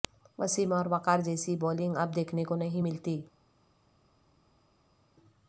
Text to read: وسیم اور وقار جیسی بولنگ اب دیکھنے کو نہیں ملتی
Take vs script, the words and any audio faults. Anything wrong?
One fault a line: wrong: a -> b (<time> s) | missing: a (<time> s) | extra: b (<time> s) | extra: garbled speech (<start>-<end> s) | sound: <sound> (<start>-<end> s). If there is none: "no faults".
no faults